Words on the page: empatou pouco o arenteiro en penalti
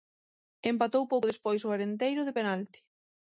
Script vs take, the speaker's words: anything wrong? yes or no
yes